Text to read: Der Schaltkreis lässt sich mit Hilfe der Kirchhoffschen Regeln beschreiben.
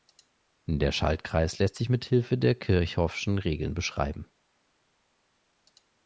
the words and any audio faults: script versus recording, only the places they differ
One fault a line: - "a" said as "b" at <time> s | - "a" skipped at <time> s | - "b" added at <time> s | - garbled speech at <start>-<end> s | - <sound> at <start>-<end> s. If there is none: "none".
none